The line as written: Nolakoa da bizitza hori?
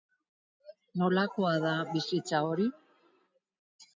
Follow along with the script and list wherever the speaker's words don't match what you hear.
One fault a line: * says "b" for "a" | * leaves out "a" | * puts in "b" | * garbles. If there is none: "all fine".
all fine